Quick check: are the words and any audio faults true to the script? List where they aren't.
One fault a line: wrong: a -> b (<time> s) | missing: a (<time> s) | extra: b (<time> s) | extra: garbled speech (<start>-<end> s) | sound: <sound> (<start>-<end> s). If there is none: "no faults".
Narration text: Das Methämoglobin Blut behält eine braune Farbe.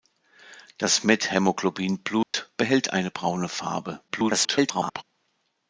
sound: dropout (2.2-2.3 s)
extra: garbled speech (4.1-5.0 s)